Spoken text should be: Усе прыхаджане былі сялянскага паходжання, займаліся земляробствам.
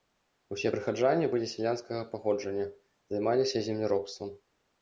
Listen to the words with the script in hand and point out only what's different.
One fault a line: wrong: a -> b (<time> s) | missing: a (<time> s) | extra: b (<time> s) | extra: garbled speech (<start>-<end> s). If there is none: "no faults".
no faults